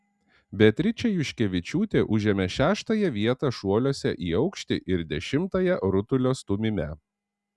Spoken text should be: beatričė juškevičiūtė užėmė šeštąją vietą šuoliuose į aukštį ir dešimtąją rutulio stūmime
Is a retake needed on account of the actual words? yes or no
no